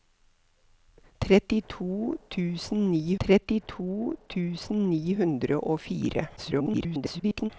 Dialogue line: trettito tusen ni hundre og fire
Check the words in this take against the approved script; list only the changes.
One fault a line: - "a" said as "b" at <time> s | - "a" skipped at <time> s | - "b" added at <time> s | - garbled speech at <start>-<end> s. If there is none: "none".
- "trettito tusen ni" added at 3.2 s
- garbled speech at 6.4-7.5 s